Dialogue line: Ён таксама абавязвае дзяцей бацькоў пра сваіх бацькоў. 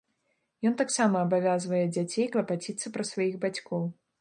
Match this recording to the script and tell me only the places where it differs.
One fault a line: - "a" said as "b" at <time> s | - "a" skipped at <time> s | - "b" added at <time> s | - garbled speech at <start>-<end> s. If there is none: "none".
- "бацькоў" said as "клапаціцца" at 2.4 s